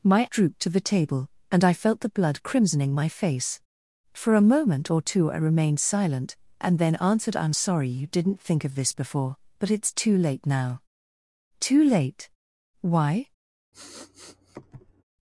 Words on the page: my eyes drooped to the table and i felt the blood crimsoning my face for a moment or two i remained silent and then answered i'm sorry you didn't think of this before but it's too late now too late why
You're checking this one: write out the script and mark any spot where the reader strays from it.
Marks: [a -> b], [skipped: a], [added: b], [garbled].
my [skipped: eyes] drooped to the table and i felt the blood crimsoning my face for a moment or two i remained silent and then answered i'm sorry you didn't think of this before but it's too late now too late why